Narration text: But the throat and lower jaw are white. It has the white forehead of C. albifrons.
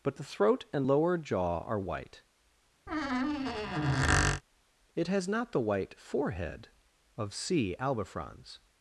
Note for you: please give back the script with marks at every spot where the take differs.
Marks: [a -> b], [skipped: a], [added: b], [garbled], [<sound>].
But the throat and lower jaw are white. [squeak] It has [added: not] the white forehead of C. albifrons.